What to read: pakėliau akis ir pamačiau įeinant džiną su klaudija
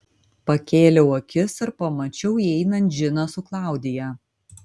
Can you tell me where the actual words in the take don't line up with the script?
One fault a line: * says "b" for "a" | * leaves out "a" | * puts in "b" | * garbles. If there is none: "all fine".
all fine